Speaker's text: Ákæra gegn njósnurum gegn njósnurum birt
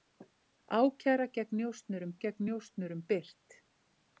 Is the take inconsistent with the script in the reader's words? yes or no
no